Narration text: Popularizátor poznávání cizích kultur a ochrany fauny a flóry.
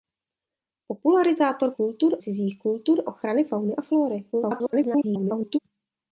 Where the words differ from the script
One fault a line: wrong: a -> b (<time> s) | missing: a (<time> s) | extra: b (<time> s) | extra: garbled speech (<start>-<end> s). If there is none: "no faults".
wrong: poznávání -> kultur (1.7 s)
missing: a (3.0 s)
extra: garbled speech (4.3-5.6 s)